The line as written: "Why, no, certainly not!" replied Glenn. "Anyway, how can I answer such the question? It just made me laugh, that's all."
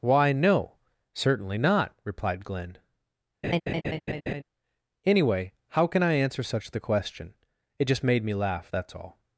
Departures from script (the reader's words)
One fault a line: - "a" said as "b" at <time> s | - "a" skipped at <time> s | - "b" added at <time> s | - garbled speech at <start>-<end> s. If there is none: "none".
none